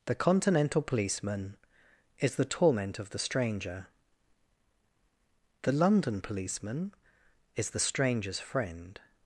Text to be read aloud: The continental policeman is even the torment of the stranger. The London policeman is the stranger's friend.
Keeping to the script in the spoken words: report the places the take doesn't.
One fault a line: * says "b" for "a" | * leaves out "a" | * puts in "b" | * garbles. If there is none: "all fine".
* leaves out "even"